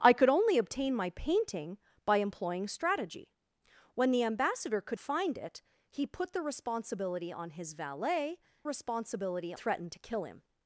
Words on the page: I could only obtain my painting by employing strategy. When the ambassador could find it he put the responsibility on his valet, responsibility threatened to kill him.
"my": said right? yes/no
yes